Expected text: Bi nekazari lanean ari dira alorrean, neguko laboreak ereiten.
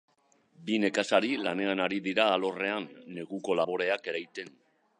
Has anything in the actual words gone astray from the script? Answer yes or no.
no